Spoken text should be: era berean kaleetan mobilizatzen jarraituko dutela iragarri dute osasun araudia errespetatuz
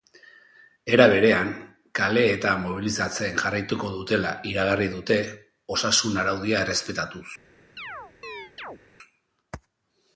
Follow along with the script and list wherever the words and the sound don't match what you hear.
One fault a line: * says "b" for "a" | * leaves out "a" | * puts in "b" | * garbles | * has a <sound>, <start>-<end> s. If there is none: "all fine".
* has a chirp, 7.8-8.8 s